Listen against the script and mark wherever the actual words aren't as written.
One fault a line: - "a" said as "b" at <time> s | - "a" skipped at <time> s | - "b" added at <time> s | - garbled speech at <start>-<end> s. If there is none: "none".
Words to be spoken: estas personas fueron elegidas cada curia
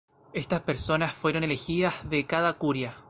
- "de" added at 2.1 s